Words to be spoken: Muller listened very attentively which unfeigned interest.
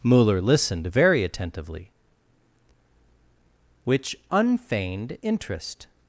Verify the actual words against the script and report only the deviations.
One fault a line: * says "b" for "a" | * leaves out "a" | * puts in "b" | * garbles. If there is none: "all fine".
all fine